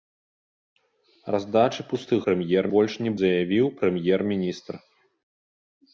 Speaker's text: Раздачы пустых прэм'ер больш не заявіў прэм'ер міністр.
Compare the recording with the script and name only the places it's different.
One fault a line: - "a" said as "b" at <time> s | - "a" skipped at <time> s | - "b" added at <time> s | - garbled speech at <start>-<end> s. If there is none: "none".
none